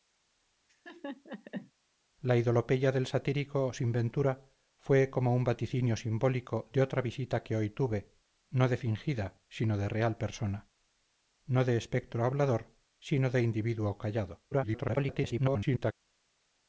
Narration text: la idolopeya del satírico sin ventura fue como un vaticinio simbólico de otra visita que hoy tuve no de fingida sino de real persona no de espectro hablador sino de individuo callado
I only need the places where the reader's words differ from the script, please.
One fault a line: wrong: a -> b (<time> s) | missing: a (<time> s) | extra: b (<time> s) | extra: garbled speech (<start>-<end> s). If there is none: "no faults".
extra: garbled speech (14.5-15.9 s)